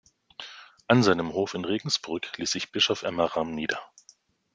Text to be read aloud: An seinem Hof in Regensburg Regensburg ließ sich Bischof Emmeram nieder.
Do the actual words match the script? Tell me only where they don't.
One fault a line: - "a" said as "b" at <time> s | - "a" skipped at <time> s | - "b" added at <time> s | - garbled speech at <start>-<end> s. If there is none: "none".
- "Regensburg" skipped at 2.2 s